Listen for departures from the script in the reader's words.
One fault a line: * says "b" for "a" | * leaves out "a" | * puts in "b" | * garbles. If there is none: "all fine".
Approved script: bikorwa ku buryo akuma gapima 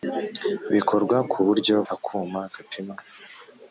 all fine